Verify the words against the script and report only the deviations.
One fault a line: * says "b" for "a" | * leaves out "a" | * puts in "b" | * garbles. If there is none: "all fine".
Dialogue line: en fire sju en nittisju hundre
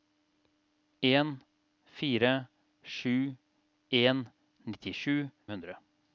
all fine